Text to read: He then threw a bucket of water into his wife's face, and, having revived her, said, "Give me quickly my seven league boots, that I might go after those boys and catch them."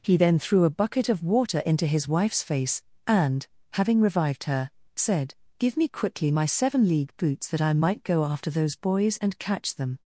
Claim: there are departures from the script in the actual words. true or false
false